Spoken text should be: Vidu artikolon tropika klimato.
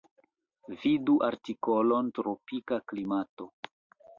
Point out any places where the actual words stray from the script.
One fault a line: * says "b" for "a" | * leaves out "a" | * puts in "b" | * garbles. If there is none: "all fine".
all fine